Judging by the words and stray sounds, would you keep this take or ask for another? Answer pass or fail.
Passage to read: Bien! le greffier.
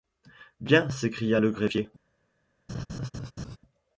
fail